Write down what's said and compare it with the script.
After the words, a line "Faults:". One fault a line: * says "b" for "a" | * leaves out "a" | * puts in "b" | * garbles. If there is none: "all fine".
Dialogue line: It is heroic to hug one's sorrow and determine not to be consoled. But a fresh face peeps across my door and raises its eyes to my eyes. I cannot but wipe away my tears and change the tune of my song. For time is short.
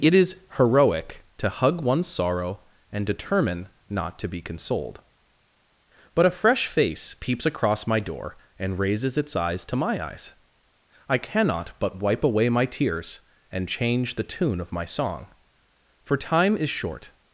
It is heroic to hug one's sorrow and determine not to be consoled. But a fresh face peeps across my door and raises its eyes to my eyes. I cannot but wipe away my tears and change the tune of my song. For time is short.
Faults:
all fine